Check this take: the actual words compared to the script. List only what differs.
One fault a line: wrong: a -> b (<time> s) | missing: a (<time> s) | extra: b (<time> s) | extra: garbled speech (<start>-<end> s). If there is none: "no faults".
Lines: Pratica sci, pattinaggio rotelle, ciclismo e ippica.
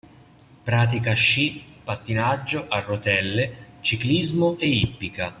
extra: a (2.7 s)